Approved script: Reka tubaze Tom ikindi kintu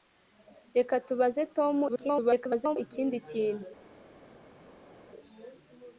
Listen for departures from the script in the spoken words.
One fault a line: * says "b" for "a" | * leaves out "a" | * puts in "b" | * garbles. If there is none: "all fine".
* garbles